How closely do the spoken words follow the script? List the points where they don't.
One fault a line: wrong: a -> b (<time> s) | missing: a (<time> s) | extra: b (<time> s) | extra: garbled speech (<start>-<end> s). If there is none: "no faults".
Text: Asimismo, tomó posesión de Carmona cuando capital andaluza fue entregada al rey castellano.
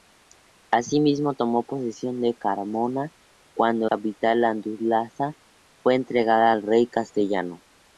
no faults